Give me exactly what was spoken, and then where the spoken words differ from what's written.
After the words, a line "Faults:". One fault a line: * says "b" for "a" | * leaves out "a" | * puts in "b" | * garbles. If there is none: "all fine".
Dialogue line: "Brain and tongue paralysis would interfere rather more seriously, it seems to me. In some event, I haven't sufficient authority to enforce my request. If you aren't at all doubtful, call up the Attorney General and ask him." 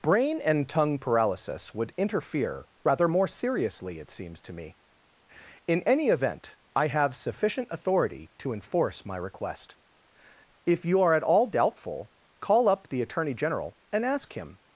"Brain and tongue paralysis would interfere rather more seriously, it seems to me. In any event, I have sufficient authority to enforce my request. If you are at all doubtful, call up the Attorney General and ask him."
Faults:
* says "any" for "some"
* says "have" for "haven't"
* says "are" for "aren't"